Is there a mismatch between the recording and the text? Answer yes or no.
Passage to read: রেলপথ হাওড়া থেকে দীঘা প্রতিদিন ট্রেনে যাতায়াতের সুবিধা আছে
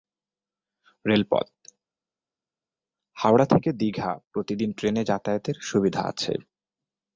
no